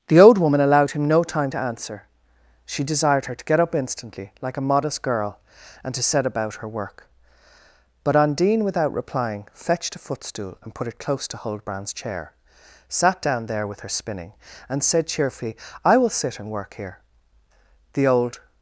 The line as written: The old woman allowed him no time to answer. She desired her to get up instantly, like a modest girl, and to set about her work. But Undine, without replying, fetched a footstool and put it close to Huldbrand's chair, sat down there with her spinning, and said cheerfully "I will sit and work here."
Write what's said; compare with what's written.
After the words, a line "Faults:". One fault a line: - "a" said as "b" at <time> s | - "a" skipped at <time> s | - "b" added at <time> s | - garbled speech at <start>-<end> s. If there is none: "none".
The old woman allowed him no time to answer. She desired her to get up instantly, like a modest girl, and to set about her work. But Undine, without replying, fetched a footstool and put it close to Huldbrand's chair, sat down there with her spinning, and said cheerfully "I will sit and work here." The old
Faults:
- "The old" added at 17.9 s